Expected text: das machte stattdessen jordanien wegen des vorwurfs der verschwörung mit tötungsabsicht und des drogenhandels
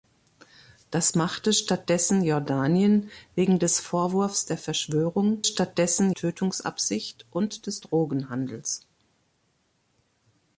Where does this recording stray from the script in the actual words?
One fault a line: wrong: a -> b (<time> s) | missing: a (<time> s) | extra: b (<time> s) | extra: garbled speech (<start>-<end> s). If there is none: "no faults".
wrong: mit -> stattdessen (5.4 s)